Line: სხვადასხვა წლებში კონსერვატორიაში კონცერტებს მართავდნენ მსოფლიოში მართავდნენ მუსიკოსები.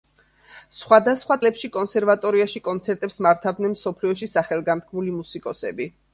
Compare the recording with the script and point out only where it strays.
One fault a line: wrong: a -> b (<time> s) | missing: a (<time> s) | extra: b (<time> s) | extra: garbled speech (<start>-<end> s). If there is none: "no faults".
wrong: მართავდნენ -> სახელგანთქმული (4.4 s)